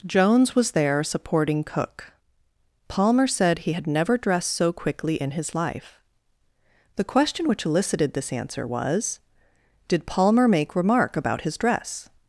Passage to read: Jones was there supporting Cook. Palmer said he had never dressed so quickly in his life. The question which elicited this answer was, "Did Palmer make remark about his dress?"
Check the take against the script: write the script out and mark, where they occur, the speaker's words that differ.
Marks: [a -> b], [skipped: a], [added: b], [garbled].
Jones was there supporting Cook. Palmer said he had never dressed so quickly in his life. The question which elicited this answer was, "Did Palmer make remark about his dress?"